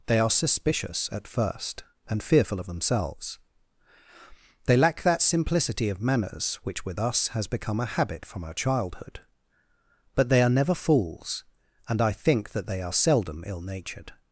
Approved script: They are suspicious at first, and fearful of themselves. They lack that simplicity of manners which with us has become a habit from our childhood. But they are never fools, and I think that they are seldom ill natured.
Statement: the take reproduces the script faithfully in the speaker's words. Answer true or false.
true